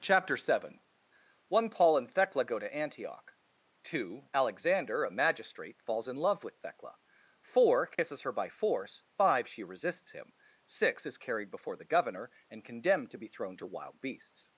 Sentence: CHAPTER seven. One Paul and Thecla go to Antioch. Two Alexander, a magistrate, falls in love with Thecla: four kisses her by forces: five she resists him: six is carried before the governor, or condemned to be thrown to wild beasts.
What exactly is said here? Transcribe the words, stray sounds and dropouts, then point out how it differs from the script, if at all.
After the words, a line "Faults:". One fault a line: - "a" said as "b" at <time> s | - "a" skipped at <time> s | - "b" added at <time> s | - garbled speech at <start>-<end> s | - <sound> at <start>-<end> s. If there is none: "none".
CHAPTER seven. One Paul and Thecla go to Antioch. Two Alexander, a magistrate, falls in love with Thecla: four kisses her by force: five she resists him: six is carried before the governor, and condemned to be thrown to wild beasts.
Faults:
- dropout at 7.9-8.0 s
- "forces" said as "force" at 8.5 s
- "or" said as "and" at 12.5 s